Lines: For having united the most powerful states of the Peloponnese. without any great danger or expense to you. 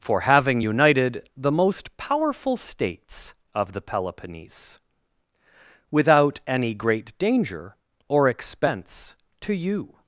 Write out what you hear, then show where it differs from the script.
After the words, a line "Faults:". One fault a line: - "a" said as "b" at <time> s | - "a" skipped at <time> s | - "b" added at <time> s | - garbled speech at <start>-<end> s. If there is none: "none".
For having united the most powerful states of the Peloponnese. without any great danger or expense to you.
Faults:
none